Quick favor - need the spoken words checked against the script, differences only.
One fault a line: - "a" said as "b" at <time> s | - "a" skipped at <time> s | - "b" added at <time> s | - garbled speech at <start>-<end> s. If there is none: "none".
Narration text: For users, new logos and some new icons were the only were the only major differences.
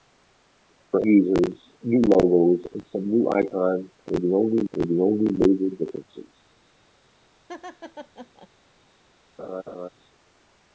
none